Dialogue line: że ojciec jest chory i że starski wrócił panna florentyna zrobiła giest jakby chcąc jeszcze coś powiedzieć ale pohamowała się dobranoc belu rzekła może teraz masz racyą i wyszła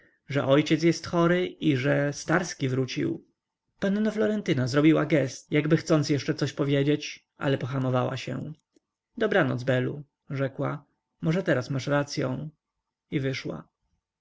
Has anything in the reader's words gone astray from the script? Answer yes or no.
no